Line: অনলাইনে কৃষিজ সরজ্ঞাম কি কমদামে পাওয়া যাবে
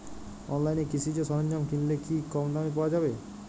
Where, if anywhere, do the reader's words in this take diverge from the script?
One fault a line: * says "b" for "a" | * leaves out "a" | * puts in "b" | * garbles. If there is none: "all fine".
* puts in "কিনলে"